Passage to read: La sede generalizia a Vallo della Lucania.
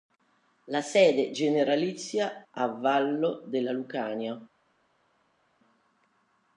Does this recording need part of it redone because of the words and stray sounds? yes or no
no